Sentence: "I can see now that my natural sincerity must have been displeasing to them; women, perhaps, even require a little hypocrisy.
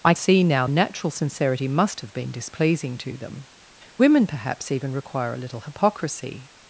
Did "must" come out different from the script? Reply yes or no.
no